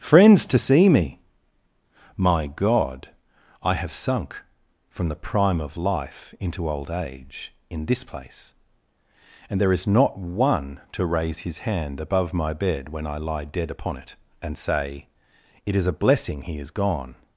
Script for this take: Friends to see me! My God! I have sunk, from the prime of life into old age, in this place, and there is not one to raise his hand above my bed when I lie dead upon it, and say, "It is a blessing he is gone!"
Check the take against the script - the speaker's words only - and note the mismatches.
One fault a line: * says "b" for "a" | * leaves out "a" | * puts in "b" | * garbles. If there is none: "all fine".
all fine